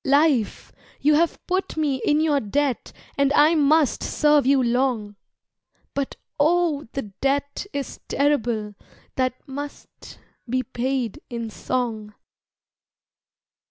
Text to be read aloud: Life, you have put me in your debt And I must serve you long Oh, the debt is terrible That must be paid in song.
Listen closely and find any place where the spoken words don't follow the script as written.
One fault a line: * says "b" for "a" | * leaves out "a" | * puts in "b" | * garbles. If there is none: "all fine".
* puts in "But"